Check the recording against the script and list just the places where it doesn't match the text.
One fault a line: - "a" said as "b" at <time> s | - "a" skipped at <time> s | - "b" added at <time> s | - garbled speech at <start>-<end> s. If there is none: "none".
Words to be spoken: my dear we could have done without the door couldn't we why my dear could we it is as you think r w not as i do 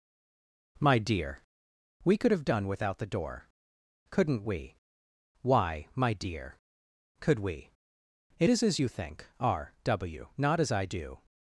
none